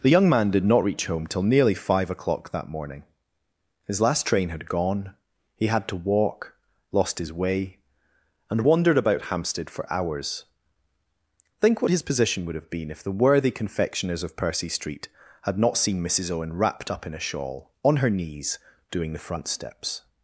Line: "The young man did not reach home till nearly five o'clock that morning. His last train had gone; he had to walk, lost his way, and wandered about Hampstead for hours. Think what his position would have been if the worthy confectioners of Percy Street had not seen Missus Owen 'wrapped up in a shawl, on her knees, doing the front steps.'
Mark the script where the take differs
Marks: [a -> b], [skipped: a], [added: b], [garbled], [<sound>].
"The young man did not reach home till nearly five o'clock that morning. His last train had gone; he had to walk, lost his way, and wandered about Hampstead for hours. Think what his position would have been if the worthy confectioners of Percy Street had not seen Missus Owen 'wrapped up in a shawl, on her knees, doing the front steps.'